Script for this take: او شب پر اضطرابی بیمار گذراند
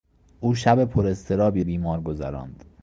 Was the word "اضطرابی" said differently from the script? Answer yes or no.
no